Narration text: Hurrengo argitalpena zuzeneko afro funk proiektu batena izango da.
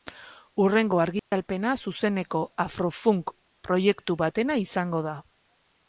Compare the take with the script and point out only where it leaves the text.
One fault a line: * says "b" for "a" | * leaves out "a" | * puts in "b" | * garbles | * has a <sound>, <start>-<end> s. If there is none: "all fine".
* has a dropout, 1.2-1.3 s